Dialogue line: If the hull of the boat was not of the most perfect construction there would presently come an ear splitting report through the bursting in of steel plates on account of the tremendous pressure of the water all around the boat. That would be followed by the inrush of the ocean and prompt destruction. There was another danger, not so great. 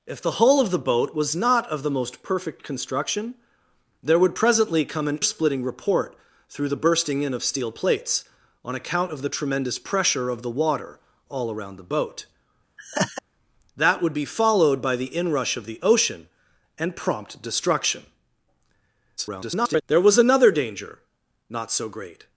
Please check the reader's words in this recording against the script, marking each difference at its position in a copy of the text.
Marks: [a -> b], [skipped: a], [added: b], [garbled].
If the hull of the boat was not of the most perfect construction there would presently come an [skipped: ear] splitting report through the bursting in of steel plates on account of the tremendous pressure of the water all around the boat. That would be followed by the inrush of the ocean and prompt destruction. [garbled] There was another danger, not so great.